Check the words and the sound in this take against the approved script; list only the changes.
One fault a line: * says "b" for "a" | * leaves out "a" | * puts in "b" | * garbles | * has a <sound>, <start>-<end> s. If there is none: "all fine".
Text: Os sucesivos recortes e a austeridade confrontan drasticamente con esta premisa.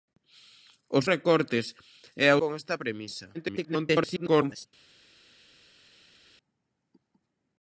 * leaves out "sucesivos"
* leaves out "austeridade confrontan drasticamente"
* garbles